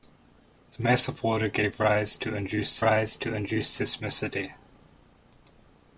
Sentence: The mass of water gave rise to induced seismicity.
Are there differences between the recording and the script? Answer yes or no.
yes